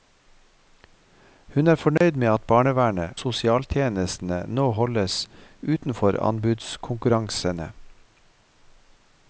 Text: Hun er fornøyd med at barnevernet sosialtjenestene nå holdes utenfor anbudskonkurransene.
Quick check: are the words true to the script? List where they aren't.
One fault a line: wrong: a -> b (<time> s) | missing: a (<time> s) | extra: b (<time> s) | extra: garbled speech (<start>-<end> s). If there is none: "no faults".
no faults